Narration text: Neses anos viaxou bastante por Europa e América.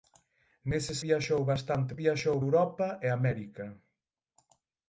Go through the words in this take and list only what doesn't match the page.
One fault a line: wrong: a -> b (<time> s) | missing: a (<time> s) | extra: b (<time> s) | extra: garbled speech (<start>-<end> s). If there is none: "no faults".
missing: anos (1.0 s)
wrong: por -> viaxou (2.0 s)